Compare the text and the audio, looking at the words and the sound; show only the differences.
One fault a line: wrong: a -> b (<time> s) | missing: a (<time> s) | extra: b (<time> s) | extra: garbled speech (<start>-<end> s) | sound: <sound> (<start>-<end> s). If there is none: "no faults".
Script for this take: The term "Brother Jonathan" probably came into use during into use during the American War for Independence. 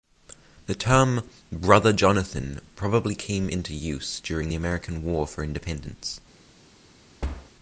missing: into use during (4.5 s)
sound: thud (7.2-7.5 s)